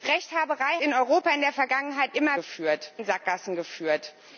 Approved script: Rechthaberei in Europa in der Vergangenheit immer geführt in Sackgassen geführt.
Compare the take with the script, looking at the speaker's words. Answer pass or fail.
pass